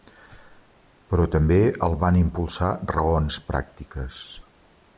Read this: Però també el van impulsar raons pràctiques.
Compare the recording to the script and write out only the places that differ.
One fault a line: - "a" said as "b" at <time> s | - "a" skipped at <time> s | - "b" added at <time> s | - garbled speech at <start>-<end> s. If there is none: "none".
none